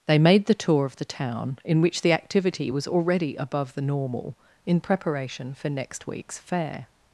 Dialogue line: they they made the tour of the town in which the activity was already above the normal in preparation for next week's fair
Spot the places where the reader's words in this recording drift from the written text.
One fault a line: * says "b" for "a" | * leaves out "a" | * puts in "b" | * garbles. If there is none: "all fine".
* leaves out "they"